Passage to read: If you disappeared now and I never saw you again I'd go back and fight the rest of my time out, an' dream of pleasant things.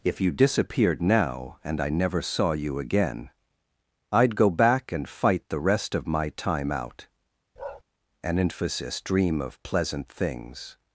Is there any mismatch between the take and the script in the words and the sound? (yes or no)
yes